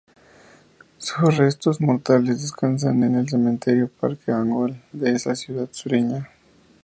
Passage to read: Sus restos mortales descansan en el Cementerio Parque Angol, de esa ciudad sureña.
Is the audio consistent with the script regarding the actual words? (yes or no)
yes